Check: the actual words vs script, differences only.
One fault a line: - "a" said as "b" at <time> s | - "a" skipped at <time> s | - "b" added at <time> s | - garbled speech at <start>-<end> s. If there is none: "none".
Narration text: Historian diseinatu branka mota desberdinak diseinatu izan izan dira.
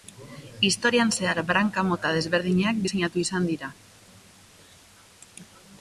- "diseinatu" said as "zehar" at 1.2 s
- "izan" skipped at 3.5 s